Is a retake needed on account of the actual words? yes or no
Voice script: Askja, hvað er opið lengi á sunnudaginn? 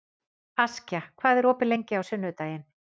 no